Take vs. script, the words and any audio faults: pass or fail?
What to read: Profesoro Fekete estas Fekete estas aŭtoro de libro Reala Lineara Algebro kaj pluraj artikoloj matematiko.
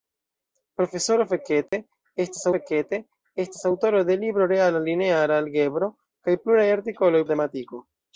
fail